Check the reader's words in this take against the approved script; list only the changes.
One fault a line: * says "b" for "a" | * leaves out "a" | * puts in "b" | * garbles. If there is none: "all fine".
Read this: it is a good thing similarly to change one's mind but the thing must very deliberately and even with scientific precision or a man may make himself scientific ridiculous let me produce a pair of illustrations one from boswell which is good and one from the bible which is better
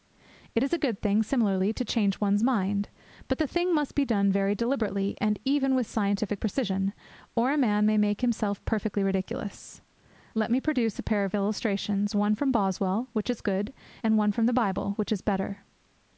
* puts in "be done"
* says "perfectly" for "scientific"